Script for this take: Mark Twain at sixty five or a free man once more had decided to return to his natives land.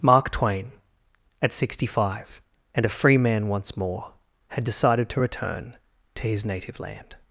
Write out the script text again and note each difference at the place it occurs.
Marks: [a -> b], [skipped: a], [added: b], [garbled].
Mark Twain at sixty five [or -> and] a free man once more had decided to return to his [natives -> native] land.